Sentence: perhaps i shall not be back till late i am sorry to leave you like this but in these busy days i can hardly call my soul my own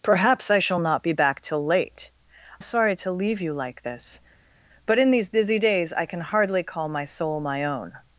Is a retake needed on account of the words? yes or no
yes